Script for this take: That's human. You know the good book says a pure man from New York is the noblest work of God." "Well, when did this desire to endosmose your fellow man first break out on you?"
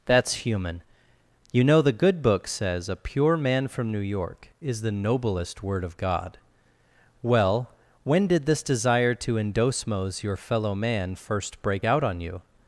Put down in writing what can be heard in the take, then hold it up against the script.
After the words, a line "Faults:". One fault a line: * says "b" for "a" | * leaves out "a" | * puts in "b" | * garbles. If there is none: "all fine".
That's human. You know the good book says a pure man from New York is the noblest word of God." "Well, when did this desire to endosmose your fellow man first break out on you?"
Faults:
* says "word" for "work"